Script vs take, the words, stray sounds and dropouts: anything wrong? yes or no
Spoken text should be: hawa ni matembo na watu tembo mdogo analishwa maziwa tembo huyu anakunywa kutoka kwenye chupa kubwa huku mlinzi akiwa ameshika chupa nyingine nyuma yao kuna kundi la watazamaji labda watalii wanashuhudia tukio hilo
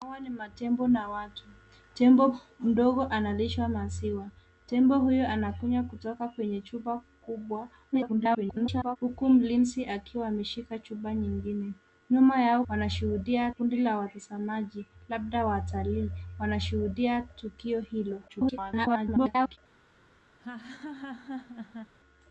yes